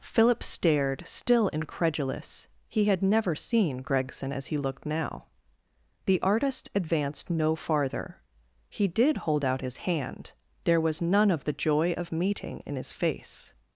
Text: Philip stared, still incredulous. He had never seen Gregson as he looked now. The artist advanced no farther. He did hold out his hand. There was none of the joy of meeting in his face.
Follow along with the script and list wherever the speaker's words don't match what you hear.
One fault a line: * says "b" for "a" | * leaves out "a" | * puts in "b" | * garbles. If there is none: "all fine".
all fine